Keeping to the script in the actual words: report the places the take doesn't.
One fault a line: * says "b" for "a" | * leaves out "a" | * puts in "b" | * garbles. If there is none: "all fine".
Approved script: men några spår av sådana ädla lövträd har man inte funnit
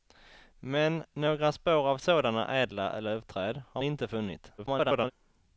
* leaves out "man"
* garbles